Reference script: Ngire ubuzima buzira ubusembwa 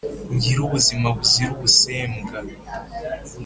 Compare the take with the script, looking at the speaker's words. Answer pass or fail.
pass